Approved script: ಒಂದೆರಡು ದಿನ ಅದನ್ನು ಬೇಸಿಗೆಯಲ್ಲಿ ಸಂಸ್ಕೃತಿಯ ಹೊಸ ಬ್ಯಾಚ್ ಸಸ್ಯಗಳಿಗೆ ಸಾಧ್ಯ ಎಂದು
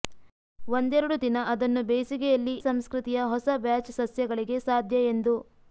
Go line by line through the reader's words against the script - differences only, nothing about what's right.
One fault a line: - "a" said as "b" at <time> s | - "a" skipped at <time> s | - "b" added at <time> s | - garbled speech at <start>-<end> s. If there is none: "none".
none